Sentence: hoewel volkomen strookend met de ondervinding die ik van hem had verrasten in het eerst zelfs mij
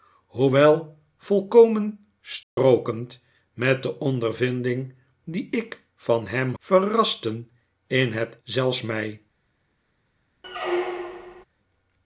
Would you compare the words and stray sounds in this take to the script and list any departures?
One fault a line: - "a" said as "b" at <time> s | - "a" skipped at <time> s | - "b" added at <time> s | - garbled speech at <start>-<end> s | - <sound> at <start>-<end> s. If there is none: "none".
- dropout at 2.4-2.6 s
- "had" skipped at 6.5 s
- "eerst" skipped at 8.4 s
- squeak at 10.4-11.5 s